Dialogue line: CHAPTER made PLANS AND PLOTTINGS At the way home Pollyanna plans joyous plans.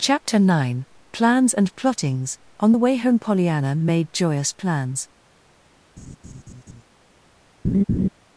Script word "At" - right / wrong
wrong